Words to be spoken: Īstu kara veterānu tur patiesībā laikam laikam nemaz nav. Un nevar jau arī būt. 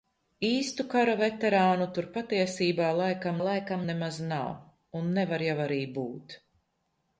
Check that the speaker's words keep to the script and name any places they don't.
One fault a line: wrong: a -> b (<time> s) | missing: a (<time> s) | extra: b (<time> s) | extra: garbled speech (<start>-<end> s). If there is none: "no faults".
no faults